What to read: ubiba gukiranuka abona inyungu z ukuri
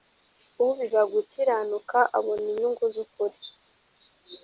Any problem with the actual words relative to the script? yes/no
no